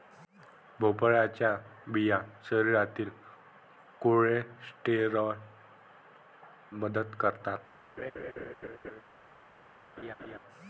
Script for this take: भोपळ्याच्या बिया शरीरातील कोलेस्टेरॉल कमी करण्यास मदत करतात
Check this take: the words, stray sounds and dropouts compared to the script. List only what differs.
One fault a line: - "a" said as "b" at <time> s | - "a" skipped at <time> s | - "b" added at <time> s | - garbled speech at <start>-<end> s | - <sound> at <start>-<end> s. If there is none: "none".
- "कमी करण्यास" skipped at 5.4 s
- laugh at 8.0-9.0 s
- laugh at 10.0-10.4 s